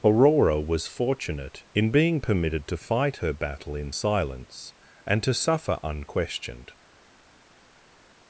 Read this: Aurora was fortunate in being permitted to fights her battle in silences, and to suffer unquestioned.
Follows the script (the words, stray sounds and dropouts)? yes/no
no